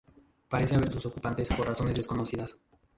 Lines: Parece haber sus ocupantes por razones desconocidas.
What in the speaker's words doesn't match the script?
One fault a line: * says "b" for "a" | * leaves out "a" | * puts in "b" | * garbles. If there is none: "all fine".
all fine